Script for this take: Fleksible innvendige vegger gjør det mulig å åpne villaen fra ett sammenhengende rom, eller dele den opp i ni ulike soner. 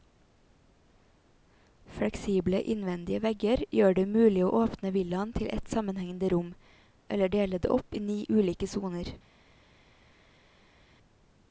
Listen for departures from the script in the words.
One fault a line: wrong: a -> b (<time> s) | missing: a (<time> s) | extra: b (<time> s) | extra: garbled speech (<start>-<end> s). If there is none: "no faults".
wrong: fra -> til (5.4 s)
wrong: den -> det (7.6 s)